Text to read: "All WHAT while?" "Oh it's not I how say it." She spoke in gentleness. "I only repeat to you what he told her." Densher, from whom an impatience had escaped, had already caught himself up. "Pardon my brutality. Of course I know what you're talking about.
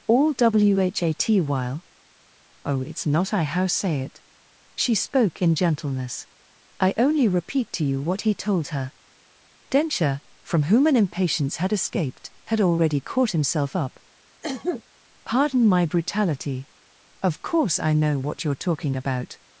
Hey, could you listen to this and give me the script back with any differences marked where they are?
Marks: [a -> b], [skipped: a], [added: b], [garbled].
"All WHAT while?" "Oh it's not I how say it." She spoke in gentleness. "I only repeat to you what he told her." Densher, from whom an impatience had escaped, had already caught himself up. "Pardon my brutality. Of course I know what you're talking about.